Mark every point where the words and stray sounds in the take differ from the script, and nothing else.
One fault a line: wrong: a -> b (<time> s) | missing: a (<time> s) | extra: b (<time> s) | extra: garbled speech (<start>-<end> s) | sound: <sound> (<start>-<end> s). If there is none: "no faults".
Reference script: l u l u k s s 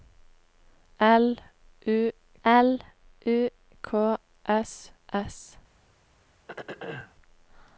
sound: throat clearing (6.5-7.2 s)